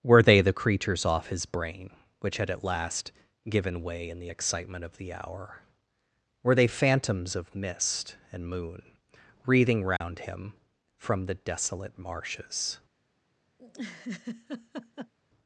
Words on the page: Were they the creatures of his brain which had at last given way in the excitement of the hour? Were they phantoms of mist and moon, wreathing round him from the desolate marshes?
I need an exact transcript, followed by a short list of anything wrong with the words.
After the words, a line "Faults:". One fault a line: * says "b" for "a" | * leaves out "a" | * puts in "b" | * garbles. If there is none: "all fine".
Were they the creatures off his brain which had at last given way in the excitement of the hour? Were they phantoms of mist and moon, wreathing round him from the desolate marshes?
Faults:
* says "off" for "of"